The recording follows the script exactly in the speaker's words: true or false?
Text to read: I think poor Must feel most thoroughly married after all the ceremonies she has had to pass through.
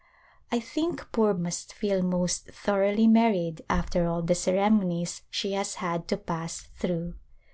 true